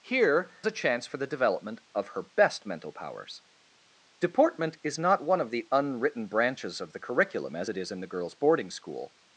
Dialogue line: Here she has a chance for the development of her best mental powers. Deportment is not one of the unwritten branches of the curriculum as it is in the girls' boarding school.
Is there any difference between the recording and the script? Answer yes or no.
yes